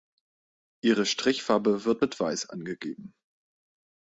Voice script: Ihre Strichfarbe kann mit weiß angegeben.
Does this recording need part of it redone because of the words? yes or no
yes